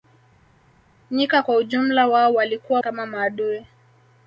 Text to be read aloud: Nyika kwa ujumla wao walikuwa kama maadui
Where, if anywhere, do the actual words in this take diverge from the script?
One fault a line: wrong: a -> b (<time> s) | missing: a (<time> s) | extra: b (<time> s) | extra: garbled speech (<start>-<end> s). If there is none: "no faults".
no faults